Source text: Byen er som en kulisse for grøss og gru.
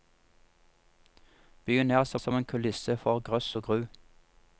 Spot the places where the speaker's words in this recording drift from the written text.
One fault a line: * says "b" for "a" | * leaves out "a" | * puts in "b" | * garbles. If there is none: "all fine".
* puts in "som"